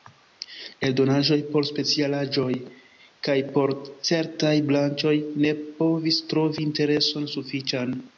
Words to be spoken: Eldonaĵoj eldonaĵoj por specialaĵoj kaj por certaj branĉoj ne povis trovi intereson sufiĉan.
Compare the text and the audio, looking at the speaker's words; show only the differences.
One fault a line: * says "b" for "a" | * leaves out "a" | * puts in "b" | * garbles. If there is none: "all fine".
* leaves out "eldonaĵoj"